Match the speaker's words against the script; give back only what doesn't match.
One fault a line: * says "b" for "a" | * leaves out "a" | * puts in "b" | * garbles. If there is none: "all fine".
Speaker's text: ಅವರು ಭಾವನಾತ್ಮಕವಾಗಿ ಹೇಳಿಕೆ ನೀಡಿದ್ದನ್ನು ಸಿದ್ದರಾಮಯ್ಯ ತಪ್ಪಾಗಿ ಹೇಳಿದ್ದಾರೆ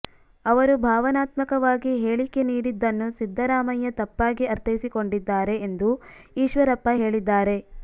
* puts in "ಅರ್ಥೈಸಿಕೊಂಡಿದ್ದಾರೆ ಎಂದು ಈಶ್ವರಪ್ಪ"